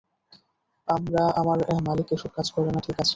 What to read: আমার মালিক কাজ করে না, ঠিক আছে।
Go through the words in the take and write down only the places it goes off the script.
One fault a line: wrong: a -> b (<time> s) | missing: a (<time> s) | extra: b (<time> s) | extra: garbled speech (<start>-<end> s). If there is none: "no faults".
extra: এসব (2.1 s)